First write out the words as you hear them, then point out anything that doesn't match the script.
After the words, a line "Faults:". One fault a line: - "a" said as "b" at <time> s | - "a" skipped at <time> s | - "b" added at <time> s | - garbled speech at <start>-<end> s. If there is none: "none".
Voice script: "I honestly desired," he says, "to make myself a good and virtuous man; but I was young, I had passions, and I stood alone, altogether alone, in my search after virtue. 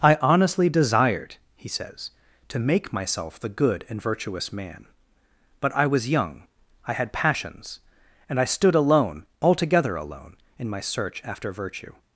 "I honestly desired," he says, "to make myself the good and virtuous man; but I was young, I had passions, and I stood alone, altogether alone, in my search after virtue.
Faults:
- "a" said as "the" at 3.4 s